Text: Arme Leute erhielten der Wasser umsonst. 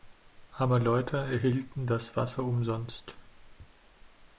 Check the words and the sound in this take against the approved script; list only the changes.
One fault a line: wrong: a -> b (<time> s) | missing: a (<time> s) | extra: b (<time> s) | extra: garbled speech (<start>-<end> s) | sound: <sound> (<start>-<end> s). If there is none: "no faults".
wrong: der -> das (1.9 s)